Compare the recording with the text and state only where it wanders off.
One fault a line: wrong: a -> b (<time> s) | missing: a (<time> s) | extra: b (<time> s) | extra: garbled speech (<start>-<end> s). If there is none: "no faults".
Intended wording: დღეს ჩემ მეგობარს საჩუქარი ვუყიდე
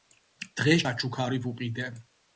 missing: ჩემ მეგობარს (0.8 s)